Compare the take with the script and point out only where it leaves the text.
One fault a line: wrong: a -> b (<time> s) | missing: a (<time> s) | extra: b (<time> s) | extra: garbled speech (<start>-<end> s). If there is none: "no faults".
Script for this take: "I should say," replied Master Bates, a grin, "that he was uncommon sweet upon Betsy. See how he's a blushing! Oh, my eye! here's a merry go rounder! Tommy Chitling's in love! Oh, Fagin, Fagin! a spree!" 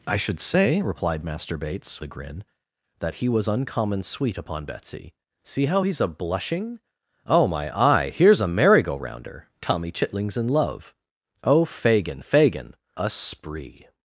no faults